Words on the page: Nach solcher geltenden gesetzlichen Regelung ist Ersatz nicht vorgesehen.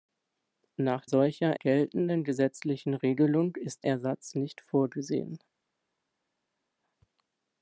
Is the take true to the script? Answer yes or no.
yes